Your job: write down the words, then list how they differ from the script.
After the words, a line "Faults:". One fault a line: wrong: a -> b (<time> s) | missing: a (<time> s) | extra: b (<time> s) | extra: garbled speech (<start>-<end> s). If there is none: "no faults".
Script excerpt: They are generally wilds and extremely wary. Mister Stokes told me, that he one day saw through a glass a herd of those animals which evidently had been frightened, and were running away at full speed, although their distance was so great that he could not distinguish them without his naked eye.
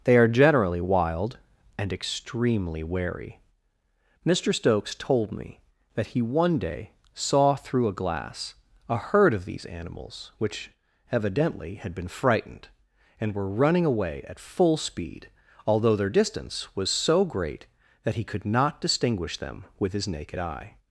They are generally wild and extremely wary. Mister Stokes told me, that he one day saw through a glass a herd of these animals which evidently had been frightened, and were running away at full speed, although their distance was so great that he could not distinguish them with his naked eye.
Faults:
wrong: wilds -> wild (0.8 s)
wrong: those -> these (9.4 s)
wrong: without -> with (19.8 s)